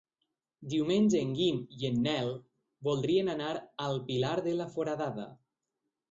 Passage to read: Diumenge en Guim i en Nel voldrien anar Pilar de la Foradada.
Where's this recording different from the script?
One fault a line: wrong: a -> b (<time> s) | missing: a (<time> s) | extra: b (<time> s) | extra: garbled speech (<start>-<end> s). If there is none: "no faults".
extra: al (3.9 s)